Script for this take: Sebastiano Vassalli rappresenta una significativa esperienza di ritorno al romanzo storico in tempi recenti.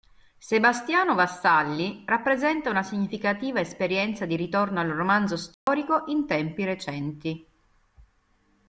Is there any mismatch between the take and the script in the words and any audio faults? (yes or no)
yes